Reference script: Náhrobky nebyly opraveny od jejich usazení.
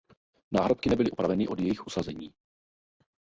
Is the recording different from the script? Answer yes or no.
no